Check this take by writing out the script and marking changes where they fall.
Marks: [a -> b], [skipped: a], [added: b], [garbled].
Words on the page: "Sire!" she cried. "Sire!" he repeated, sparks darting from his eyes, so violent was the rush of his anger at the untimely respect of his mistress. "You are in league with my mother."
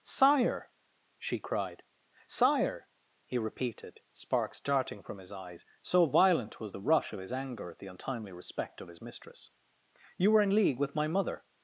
"Sire!" she cried. "Sire!" he repeated, sparks darting from his eyes, so violent was the rush of his anger at the untimely respect of his mistress. "You [are -> were] in league with my mother."